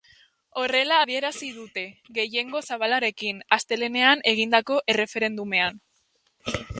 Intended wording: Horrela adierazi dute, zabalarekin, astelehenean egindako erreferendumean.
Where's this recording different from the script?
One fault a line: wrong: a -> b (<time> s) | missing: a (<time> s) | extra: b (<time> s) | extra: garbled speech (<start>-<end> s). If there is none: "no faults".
extra: gehiengo (2.2 s)